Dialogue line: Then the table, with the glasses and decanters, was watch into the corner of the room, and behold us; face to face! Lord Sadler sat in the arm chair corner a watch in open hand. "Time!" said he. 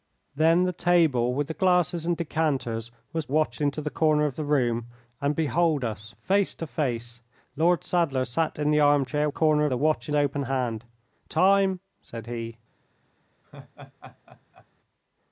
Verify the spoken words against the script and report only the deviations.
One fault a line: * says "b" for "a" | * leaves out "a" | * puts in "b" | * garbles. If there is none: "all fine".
all fine